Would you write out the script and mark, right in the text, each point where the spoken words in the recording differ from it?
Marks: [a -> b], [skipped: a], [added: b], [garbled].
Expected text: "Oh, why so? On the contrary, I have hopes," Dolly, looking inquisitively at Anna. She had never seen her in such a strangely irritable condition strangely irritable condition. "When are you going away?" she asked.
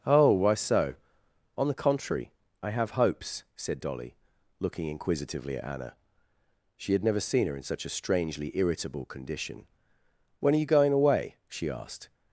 "Oh, why so? On the contrary, I have hopes," [added: said] Dolly, looking inquisitively at Anna. She had never seen her in such a strangely irritable condition [skipped: strangely irritable condition.] "When are you going away?" she asked.